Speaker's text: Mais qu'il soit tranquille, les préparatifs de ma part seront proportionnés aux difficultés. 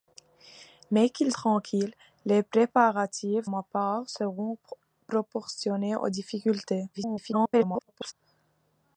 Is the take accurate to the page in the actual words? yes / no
no